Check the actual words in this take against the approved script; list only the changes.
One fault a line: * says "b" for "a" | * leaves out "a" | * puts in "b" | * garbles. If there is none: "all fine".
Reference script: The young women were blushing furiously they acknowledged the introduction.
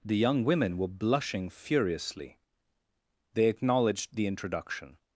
all fine